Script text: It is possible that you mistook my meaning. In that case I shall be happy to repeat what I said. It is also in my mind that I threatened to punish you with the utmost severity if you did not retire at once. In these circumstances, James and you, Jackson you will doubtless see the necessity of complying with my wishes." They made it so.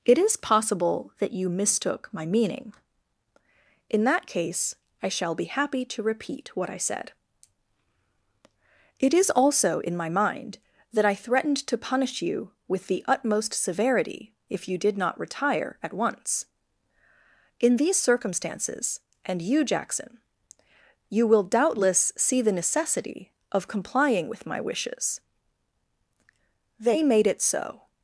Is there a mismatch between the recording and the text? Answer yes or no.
yes